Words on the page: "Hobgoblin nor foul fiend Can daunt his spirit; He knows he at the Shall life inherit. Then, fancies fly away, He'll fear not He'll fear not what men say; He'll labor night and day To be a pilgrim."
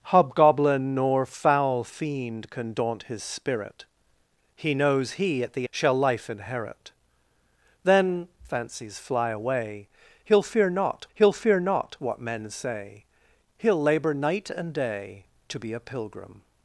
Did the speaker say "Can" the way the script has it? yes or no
yes